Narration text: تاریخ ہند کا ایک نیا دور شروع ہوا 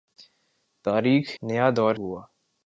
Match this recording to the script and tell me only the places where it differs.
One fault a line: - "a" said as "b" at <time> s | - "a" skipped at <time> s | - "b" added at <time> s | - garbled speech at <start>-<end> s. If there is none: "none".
- "ہند کا ایک" skipped at 1.4 s
- "شروع" skipped at 1.9 s